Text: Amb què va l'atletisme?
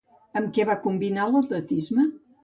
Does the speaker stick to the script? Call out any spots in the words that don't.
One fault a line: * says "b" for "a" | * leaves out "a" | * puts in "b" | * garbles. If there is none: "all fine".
* puts in "combinar"